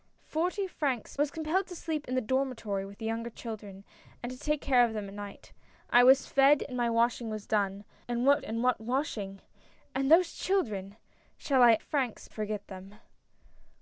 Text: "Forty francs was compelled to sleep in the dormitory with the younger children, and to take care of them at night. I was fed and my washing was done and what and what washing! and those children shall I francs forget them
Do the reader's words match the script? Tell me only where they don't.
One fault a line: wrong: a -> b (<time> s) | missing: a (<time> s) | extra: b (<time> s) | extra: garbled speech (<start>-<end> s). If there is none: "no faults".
no faults